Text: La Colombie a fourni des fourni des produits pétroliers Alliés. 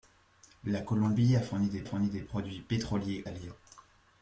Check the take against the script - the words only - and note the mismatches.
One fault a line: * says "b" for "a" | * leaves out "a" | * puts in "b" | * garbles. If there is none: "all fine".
all fine